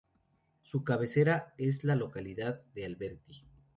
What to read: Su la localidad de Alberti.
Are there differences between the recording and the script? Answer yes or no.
yes